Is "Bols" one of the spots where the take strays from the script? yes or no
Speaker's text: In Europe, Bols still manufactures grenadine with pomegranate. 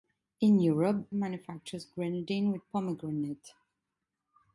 yes